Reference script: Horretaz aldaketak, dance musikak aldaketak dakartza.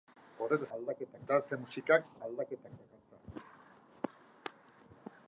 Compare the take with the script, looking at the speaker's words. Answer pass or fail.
pass